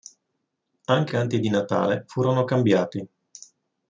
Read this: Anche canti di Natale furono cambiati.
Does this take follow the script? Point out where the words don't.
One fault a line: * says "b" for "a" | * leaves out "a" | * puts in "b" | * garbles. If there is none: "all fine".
all fine